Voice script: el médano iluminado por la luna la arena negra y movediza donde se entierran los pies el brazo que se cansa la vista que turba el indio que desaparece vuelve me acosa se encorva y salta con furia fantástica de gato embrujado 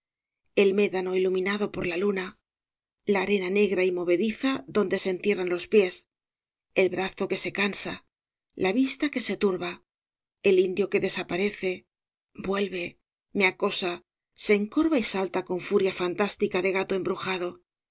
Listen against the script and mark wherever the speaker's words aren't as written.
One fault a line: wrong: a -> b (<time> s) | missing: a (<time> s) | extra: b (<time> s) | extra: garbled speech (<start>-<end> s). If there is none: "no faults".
extra: se (9.2 s)